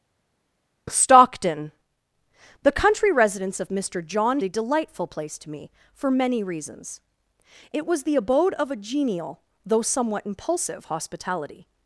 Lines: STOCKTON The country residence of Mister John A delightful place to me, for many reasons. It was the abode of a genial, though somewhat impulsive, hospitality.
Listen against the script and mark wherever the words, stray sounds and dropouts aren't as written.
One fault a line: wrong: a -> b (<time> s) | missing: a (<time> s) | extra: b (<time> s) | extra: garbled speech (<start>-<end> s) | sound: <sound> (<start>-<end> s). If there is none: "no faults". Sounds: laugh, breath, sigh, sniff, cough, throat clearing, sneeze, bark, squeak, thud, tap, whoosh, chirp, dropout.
no faults